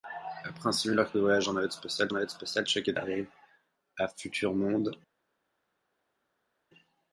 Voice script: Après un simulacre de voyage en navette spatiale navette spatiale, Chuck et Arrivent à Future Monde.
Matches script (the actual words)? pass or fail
pass